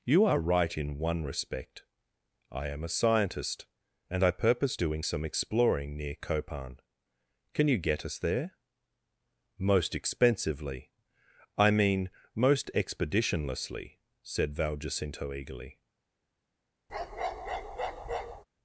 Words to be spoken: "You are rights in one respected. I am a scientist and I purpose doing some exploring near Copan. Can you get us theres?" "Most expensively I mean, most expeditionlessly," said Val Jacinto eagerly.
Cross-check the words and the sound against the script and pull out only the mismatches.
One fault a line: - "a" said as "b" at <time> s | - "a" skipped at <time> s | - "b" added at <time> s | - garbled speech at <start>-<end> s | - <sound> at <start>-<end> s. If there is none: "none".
- "rights" said as "right" at 0.4 s
- "respected" said as "respect" at 1.2 s
- "theres" said as "there" at 8.2 s
- bark at 16.9-18.4 s